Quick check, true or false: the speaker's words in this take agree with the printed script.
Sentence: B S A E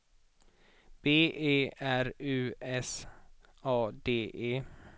false